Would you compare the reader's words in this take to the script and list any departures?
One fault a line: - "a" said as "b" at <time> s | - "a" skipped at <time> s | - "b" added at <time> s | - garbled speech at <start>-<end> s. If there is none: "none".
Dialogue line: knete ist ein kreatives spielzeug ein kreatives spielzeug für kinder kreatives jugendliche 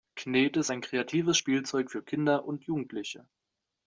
- "ein kreatives spielzeug" skipped at 1.9 s
- "kreatives" said as "und" at 2.4 s